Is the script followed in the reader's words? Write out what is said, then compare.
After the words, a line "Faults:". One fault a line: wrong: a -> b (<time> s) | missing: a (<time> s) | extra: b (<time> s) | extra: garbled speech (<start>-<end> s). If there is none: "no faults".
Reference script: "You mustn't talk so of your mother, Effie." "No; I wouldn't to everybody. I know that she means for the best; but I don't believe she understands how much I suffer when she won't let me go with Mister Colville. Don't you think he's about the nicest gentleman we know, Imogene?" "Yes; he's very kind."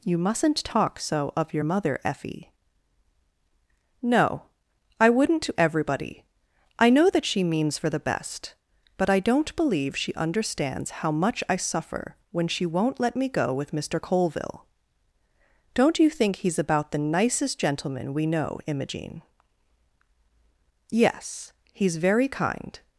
"You mustn't talk so of your mother, Effie." "No; I wouldn't to everybody. I know that she means for the best; but I don't believe she understands how much I suffer when she won't let me go with Mister Colville. Don't you think he's about the nicest gentleman we know, Imogene?" "Yes; he's very kind."
Faults:
no faults